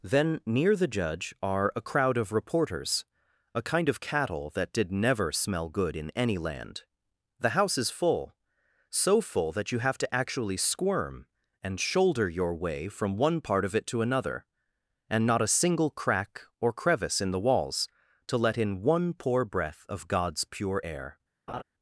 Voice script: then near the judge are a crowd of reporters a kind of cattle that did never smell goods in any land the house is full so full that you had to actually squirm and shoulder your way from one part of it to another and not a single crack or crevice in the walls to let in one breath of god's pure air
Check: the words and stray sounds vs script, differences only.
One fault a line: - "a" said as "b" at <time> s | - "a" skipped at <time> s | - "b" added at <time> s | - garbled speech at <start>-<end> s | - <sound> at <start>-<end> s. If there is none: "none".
- "goods" said as "good" at 5.7 s
- "had" said as "have" at 9.8 s
- "poor" added at 19.1 s
- laugh at 21.5-21.6 s